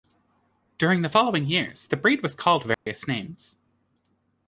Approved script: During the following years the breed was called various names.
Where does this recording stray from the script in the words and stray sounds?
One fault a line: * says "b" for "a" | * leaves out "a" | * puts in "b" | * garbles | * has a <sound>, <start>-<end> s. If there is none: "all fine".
* has a dropout, 2.7-2.9 s